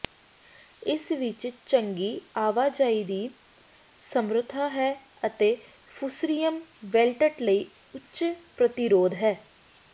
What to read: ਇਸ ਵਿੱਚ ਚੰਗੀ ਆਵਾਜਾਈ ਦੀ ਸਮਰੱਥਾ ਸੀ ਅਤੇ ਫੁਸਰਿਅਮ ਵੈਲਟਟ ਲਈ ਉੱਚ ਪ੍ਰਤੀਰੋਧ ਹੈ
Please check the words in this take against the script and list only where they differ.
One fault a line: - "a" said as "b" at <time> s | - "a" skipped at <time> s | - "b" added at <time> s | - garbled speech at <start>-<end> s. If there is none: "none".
- "ਸੀ" said as "ਹੈ" at 4.7 s